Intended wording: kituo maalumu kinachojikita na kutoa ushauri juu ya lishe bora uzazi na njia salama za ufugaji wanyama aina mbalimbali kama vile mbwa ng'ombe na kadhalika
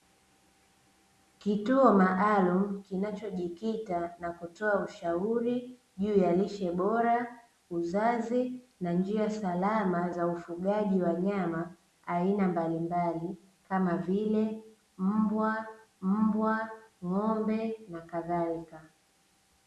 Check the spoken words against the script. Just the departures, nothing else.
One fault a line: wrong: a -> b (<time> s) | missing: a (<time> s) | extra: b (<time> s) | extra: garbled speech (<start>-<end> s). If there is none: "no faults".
extra: mbwa (16.0 s)